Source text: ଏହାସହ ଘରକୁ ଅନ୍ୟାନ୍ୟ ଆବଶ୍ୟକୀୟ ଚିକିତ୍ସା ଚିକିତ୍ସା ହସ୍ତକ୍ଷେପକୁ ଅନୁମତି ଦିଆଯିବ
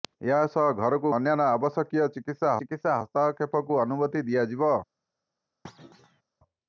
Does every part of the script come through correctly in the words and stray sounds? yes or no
no